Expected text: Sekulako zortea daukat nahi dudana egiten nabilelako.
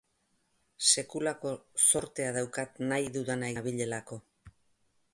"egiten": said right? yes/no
no